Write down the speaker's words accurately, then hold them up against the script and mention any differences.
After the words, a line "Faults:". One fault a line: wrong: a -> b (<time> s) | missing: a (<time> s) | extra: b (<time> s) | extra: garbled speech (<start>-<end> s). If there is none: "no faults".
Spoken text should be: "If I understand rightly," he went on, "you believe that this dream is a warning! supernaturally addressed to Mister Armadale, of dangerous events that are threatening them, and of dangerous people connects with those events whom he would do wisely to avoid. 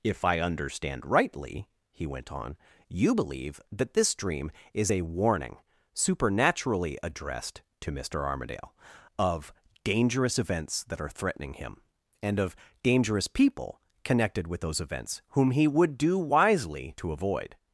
"If I understand rightly," he went on, "you believe that this dream is a warning! supernaturally addressed to Mister Armadale, of dangerous events that are threatening him, and of dangerous people connected with those events whom he would do wisely to avoid.
Faults:
wrong: them -> him (11.6 s)
wrong: connects -> connected (14.1 s)